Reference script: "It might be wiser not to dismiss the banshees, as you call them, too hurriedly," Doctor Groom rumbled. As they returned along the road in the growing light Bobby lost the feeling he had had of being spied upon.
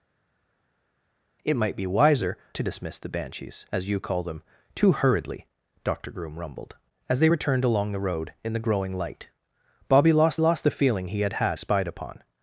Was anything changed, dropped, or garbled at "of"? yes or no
yes